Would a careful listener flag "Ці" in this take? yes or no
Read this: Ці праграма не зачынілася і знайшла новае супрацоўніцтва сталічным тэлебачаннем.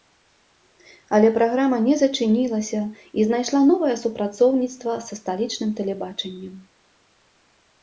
yes